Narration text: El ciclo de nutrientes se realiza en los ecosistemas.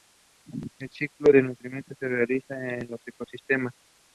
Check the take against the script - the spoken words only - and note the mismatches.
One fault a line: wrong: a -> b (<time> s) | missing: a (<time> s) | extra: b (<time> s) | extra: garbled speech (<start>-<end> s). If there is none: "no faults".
no faults